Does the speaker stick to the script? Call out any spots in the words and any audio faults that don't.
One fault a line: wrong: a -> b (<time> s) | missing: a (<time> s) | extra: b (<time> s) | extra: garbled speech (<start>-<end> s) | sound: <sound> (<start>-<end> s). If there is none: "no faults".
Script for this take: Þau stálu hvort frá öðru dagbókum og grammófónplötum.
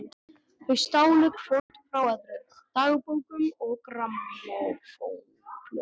sound: dropout (1.6-1.7 s)